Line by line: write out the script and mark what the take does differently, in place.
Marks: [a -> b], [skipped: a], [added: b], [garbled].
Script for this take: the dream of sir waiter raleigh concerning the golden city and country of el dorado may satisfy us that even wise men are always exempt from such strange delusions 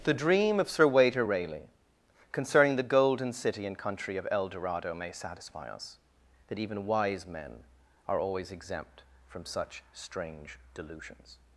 the dream of sir waiter raleigh concerning the golden city and country of el dorado may satisfy us that even wise men are always exempt from such strange delusions